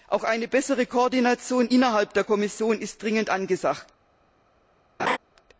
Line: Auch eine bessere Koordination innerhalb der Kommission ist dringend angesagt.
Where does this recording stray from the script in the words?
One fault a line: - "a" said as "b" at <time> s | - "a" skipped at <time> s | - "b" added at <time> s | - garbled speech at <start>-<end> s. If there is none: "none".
none